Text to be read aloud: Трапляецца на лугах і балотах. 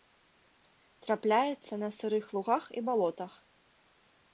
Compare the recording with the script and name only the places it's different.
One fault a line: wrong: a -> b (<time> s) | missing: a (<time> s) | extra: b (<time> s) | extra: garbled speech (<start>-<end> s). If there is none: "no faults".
extra: сырых (2.0 s)